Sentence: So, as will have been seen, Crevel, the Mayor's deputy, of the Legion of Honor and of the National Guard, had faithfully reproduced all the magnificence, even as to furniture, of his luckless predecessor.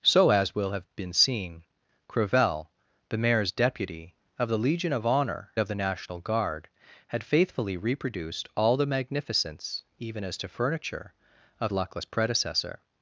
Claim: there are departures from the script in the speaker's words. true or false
true